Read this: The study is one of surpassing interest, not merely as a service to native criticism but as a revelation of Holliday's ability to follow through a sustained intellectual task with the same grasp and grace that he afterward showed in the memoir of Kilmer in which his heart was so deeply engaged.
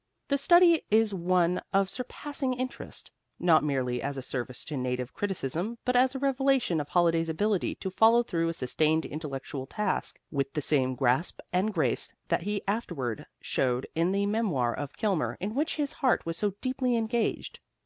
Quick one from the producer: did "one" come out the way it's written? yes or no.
yes